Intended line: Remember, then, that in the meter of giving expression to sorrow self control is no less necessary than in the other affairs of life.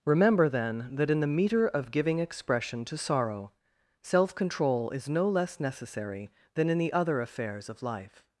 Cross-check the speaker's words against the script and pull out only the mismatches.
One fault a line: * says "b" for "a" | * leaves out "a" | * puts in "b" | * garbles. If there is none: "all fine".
all fine